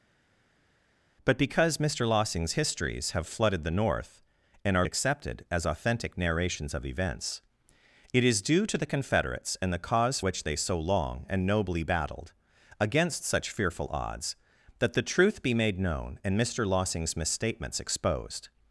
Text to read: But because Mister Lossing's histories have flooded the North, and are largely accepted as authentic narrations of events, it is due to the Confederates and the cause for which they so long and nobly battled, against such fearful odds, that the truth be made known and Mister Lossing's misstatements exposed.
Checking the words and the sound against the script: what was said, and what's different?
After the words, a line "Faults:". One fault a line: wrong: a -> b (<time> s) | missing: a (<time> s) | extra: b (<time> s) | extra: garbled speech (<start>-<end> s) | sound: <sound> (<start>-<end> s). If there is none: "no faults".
But because Mister Lossing's histories have flooded the North, and are accepted as authentic narrations of events, it is due to the Confederates and the cause which they so long and nobly battled, against such fearful odds, that the truth be made known and Mister Lossing's misstatements exposed.
Faults:
missing: largely (4.9 s)
missing: for (10.2 s)